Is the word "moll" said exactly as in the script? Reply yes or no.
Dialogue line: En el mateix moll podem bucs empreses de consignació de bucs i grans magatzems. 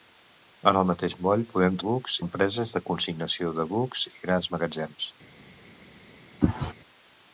yes